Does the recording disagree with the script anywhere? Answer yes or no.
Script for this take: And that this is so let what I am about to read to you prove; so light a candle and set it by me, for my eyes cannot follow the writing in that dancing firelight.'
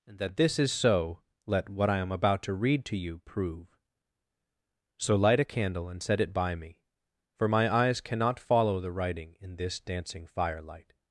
yes